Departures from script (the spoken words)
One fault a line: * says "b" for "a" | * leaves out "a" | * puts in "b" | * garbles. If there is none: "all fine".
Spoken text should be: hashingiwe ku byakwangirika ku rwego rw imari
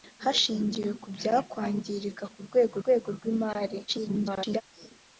* puts in "rwego"
* garbles